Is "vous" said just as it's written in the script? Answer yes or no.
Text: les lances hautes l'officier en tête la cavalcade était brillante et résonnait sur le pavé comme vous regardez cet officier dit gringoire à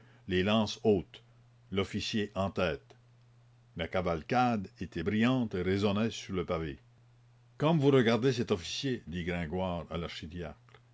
yes